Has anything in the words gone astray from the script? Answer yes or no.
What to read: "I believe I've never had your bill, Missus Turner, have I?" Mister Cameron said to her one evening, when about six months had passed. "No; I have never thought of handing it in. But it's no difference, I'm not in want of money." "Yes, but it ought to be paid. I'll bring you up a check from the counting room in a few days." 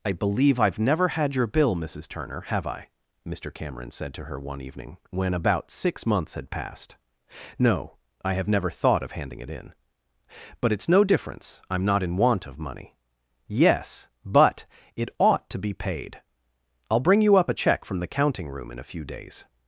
no